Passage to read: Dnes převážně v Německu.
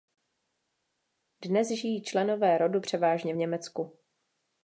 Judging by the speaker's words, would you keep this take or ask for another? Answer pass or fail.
fail